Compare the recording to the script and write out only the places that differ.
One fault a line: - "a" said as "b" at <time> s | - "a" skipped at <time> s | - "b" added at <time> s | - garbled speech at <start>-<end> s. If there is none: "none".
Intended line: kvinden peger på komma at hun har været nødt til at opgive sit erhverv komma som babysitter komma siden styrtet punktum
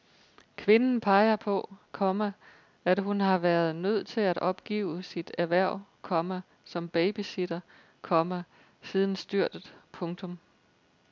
none